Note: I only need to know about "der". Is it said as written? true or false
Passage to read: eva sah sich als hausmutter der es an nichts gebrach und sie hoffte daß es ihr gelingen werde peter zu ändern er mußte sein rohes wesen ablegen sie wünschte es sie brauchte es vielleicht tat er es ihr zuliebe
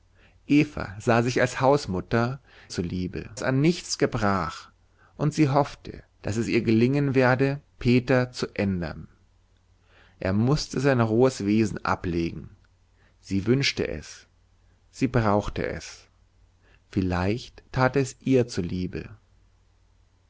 false